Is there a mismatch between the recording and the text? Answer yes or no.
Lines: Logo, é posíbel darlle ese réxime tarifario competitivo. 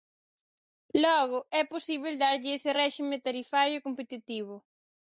no